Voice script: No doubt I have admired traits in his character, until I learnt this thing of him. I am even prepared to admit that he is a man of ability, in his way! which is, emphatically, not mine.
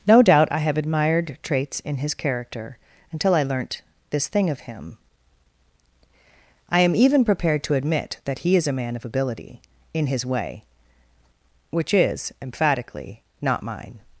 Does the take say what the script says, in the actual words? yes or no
yes